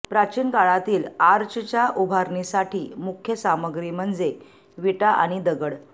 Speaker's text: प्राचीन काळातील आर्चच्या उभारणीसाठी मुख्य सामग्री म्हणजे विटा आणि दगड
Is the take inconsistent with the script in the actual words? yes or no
no